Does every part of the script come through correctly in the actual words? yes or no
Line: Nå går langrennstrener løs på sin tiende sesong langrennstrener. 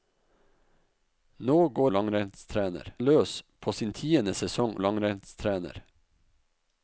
yes